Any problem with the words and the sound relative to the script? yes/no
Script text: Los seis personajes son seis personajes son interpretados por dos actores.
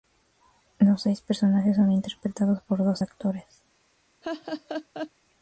yes